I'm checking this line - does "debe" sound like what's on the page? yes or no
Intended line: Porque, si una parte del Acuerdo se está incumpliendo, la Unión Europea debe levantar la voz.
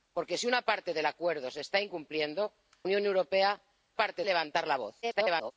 no